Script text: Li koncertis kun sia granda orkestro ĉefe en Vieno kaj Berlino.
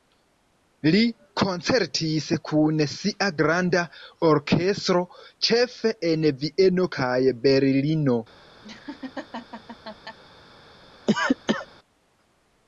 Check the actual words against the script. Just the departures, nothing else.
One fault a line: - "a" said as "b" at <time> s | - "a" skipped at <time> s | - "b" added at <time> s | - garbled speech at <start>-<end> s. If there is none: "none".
none